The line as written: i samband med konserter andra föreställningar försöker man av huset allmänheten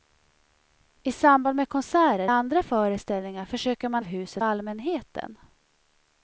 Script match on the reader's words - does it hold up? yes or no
yes